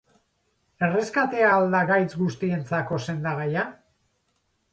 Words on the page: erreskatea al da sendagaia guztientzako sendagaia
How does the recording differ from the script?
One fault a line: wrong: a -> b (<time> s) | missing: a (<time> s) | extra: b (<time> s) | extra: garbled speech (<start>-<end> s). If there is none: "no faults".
wrong: sendagaia -> gaitz (1.9 s)